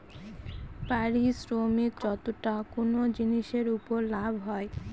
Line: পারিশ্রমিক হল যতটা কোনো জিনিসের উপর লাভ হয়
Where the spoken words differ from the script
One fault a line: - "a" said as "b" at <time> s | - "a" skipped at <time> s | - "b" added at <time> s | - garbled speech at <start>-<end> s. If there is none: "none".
- "হল" skipped at 1.9 s